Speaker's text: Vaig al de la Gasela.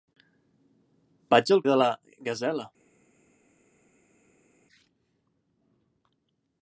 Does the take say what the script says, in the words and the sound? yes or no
yes